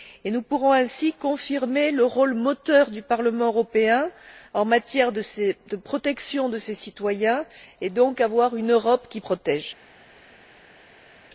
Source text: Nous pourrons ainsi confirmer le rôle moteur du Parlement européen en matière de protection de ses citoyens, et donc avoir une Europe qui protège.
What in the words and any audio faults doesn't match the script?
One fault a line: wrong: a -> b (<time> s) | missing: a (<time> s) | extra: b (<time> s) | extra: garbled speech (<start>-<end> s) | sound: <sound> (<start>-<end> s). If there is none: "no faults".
no faults